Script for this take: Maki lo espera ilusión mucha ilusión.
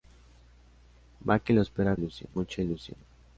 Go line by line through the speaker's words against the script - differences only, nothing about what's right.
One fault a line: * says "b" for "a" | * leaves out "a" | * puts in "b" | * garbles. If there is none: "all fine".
all fine